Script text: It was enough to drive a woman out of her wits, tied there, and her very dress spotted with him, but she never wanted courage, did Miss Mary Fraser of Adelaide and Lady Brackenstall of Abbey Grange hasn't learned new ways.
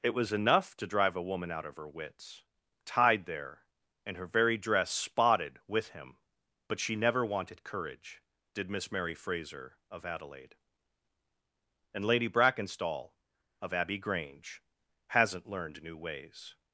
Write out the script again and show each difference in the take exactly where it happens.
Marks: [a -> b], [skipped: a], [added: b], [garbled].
It was enough to drive a woman out of her wits, tied there, and her very dress spotted with him, but she never wanted courage, did Miss Mary Fraser of Adelaide and Lady Brackenstall of Abbey Grange hasn't learned new ways.